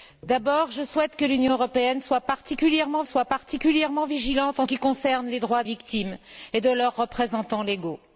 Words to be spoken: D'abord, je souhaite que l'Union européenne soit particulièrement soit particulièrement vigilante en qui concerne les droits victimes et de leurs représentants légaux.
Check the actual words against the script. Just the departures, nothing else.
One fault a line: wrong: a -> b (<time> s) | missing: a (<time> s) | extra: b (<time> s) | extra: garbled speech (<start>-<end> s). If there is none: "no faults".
no faults